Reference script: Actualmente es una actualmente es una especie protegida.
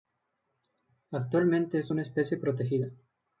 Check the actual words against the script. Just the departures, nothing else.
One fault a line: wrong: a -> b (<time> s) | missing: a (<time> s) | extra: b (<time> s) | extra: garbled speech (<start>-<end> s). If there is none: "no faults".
missing: actualmente es una (2.0 s)